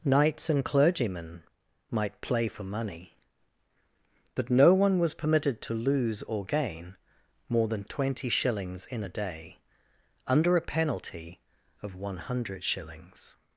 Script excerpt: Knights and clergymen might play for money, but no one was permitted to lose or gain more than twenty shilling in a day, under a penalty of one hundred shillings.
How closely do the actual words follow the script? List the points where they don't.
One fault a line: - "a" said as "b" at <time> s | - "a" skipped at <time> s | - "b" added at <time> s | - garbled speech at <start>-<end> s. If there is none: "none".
- "shilling" said as "shillings" at 8.3 s